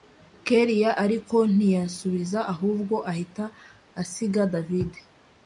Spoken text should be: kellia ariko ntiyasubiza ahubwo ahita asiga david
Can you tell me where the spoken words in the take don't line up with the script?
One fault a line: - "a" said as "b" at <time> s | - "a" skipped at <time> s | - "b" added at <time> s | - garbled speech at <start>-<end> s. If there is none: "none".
none